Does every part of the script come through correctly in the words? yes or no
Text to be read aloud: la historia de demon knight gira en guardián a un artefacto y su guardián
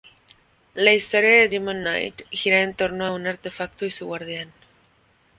no